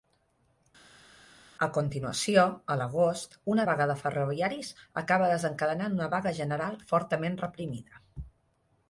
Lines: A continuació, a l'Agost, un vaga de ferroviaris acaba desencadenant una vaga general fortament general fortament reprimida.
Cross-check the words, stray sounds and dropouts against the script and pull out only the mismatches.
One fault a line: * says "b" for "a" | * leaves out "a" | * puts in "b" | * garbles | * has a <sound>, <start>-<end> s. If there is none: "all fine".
* says "una" for "un"
* leaves out "general fortament"